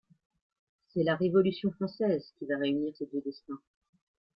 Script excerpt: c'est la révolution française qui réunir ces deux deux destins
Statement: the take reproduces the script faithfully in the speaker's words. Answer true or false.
false